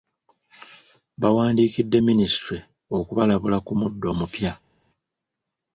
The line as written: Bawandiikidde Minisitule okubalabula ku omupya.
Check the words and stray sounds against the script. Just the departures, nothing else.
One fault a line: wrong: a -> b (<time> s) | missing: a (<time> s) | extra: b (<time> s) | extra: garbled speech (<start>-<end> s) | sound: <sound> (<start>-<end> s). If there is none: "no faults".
extra: muddo (3.8 s)